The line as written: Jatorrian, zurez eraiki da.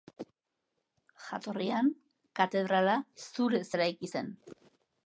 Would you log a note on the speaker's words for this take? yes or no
yes